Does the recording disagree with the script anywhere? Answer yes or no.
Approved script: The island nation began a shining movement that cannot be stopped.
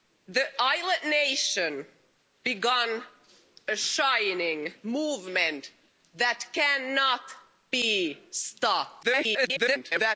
yes